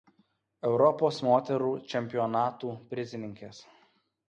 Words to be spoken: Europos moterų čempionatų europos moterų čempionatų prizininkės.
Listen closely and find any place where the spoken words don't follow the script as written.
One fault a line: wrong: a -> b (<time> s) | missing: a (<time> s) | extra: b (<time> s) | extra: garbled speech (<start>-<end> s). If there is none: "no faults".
missing: europos moterų čempionatų (2.7 s)